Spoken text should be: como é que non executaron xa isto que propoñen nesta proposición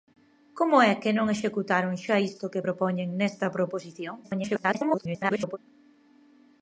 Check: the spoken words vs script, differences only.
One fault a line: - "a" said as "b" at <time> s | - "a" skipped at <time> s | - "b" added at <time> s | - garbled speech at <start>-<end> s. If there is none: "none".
- garbled speech at 4.2-5.6 s